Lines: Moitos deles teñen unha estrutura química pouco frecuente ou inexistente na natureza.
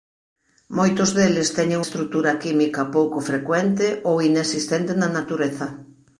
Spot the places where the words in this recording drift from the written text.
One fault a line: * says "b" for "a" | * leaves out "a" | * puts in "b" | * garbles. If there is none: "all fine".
* leaves out "unha"